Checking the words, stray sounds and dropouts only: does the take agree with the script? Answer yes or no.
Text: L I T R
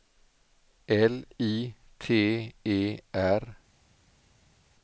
no